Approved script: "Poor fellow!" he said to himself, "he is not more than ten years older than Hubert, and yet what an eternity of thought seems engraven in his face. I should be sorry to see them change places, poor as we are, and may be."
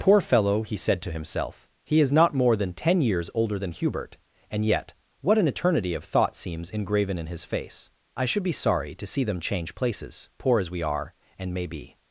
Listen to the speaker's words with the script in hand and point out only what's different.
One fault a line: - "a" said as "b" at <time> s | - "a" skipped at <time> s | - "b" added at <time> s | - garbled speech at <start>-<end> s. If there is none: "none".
none